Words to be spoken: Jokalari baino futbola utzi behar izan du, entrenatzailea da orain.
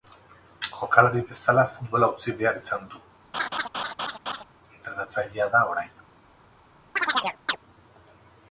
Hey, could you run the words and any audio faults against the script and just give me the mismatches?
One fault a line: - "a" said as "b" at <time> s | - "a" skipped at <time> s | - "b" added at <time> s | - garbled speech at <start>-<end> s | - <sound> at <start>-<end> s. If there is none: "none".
- "baino" said as "bezala" at 1.3 s
- laugh at 3.3-4.4 s
- chirp at 7.0-7.6 s